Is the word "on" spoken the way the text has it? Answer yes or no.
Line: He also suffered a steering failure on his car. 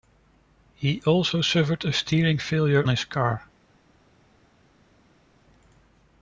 no